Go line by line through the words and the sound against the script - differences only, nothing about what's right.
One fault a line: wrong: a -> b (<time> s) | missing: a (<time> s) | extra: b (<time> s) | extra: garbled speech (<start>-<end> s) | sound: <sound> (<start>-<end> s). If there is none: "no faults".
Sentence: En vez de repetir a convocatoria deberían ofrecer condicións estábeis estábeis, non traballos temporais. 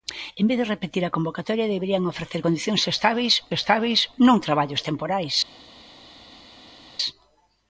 no faults